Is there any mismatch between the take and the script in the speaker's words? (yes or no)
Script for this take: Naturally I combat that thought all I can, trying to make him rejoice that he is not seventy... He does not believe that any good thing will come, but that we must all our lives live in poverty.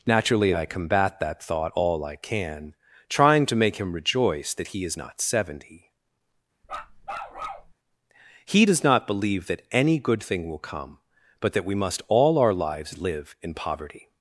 no